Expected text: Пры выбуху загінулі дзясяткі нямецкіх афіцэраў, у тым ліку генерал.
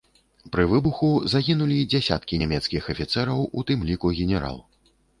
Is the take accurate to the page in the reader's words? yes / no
yes